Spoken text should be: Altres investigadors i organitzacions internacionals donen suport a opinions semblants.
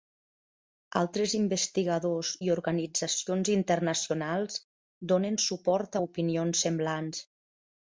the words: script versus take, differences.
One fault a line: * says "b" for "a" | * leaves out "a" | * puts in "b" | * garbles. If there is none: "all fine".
all fine